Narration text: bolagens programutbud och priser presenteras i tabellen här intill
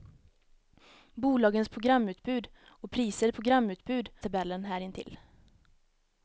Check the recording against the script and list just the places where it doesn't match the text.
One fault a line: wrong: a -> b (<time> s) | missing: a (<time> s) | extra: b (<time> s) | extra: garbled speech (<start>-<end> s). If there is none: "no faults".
wrong: presenteras -> programutbud (3.3 s)